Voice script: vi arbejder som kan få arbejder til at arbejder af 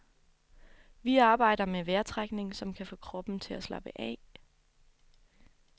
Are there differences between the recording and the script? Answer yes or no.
yes